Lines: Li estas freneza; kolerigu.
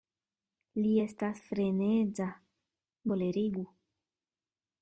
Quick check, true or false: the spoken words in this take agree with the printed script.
true